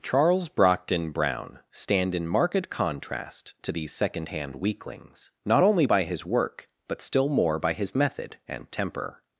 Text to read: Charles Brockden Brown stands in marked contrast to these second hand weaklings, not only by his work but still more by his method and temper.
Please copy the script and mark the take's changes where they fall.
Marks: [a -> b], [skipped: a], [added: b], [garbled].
Charles Brockden Brown [stands -> stand] in marked contrast to these second hand weaklings, not only by his work but still more by his method and temper.